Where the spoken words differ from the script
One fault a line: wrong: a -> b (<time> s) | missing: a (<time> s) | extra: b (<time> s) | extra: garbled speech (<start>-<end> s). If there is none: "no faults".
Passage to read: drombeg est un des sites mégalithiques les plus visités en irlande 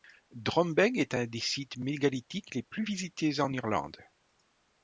no faults